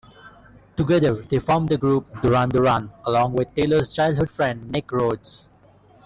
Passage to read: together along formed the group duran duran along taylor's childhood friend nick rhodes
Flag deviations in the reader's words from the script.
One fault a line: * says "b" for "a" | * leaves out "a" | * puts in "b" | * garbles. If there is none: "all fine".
* says "they" for "along"
* puts in "with"